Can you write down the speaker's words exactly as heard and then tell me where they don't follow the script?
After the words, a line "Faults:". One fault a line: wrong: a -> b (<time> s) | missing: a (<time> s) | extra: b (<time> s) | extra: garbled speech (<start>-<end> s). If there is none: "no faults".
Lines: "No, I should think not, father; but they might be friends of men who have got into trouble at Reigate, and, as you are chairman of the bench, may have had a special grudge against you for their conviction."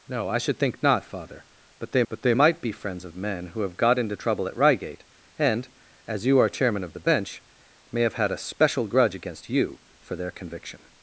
"No, I should think not, father; but they but they might be friends of men who have got into trouble at Reigate, and, as you are chairman of the bench, may have had a special grudge against you for their conviction."
Faults:
extra: but they (2.1 s)